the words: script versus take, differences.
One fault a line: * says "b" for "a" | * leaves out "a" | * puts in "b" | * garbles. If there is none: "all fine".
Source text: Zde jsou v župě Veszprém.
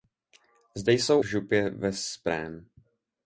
all fine